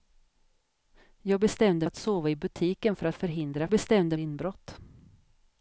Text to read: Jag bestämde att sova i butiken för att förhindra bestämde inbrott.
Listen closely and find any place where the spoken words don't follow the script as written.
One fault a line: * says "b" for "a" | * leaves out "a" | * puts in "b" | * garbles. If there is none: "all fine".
all fine